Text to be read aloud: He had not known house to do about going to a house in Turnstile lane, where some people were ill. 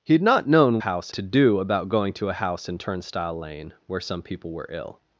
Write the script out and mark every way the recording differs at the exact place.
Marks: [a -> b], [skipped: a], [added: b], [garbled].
He had not known house to do about going to a house in Turnstile lane, where some people were ill.